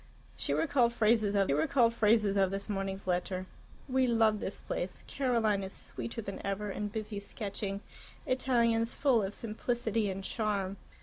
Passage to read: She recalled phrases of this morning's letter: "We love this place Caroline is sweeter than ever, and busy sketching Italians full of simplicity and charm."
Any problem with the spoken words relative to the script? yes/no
yes